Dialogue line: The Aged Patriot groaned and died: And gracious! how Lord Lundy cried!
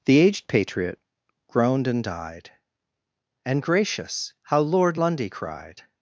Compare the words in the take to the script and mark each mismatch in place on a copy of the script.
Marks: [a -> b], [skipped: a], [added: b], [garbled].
The Aged Patriot groaned and died: And gracious! how Lord Lundy cried!